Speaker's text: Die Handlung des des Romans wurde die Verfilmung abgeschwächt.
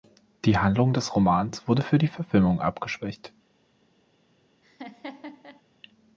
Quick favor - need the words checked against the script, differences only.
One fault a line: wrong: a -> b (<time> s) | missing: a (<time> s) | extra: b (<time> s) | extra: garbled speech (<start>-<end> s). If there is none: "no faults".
missing: des (1.1 s)
extra: für (1.8 s)